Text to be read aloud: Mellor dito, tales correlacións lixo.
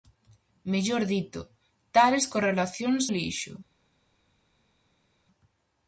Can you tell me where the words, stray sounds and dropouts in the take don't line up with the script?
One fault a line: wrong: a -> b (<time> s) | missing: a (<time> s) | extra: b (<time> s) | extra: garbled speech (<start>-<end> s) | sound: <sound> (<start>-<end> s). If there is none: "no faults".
no faults